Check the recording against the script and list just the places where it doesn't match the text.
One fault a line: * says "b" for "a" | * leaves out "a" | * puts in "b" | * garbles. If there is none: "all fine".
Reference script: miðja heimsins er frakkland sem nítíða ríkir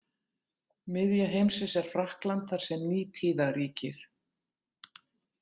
* puts in "þar"